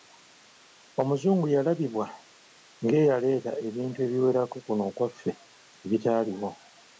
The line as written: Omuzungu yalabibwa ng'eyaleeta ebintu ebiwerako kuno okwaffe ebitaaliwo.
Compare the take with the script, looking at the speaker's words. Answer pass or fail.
pass